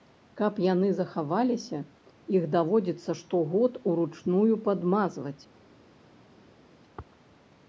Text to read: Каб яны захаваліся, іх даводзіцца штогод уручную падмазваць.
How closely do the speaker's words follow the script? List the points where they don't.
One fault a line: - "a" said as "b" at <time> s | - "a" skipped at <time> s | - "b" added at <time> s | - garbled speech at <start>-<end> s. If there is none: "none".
none